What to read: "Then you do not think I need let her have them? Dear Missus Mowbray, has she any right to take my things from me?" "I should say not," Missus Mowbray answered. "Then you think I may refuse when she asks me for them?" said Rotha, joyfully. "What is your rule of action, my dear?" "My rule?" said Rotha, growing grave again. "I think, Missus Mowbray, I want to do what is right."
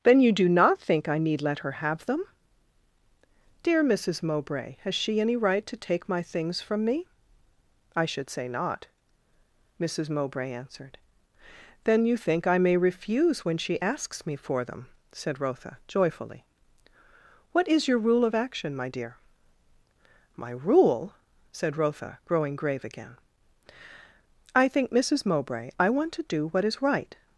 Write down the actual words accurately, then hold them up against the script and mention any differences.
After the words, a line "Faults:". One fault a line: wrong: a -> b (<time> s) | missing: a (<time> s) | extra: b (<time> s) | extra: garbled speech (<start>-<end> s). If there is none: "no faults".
"Then you do not think I need let her have them? Dear Missus Mowbray, has she any right to take my things from me?" "I should say not," Missus Mowbray answered. "Then you think I may refuse when she asks me for them?" said Rotha, joyfully. "What is your rule of action, my dear?" "My rule?" said Rotha, growing grave again. "I think, Missus Mowbray, I want to do what is right."
Faults:
no faults